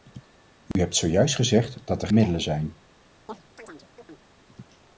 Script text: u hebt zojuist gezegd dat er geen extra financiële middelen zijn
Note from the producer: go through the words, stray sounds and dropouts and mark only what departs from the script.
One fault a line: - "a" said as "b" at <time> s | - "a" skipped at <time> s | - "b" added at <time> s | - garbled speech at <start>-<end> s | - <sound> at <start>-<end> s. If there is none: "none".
- dropout at 0.7-0.8 s
- "geen extra financiële" skipped at 2.1 s
- chirp at 3.3-4.3 s